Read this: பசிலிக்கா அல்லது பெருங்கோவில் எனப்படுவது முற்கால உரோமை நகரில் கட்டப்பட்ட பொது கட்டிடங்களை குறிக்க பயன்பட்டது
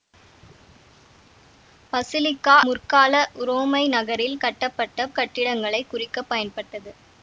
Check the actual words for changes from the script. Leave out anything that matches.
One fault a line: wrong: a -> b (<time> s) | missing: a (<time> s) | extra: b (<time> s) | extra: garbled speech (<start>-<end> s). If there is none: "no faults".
missing: அல்லது பெருங்கோவில் எனப்படுவது (2.5 s)
missing: பொது (5.1 s)